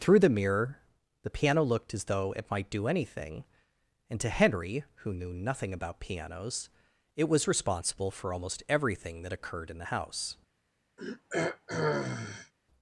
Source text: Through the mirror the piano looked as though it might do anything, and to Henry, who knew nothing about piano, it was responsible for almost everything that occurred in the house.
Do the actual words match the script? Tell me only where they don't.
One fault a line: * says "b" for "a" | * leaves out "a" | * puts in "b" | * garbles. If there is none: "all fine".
* says "pianos" for "piano"